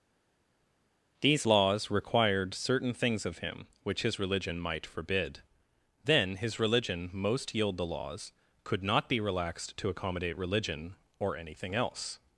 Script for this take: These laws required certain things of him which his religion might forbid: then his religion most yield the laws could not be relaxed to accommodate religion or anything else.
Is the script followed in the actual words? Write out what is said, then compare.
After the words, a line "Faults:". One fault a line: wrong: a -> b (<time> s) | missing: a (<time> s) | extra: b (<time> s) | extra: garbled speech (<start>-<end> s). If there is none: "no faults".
These laws required certain things of him which his religion might forbid: then his religion most yield the laws could not be relaxed to accommodate religion or anything else.
Faults:
no faults